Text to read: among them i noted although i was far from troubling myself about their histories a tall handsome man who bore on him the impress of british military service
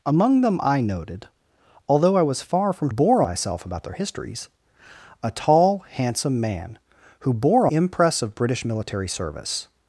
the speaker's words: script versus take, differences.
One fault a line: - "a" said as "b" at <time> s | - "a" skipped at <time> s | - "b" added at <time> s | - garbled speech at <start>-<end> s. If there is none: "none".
- "troubling" said as "bore" at 2.9 s
- "on him the" skipped at 7.7 s